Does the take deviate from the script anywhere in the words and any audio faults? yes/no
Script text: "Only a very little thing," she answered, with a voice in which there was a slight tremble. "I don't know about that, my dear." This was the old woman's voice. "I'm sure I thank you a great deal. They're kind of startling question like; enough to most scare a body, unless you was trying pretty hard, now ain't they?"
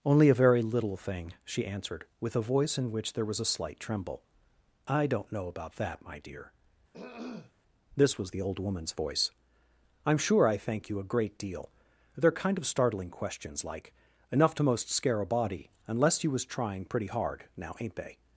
yes